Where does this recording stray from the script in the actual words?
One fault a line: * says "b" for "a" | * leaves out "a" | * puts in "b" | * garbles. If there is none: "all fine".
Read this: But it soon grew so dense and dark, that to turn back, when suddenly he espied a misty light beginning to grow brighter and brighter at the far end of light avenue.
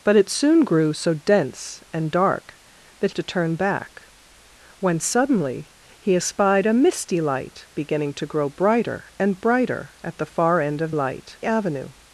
all fine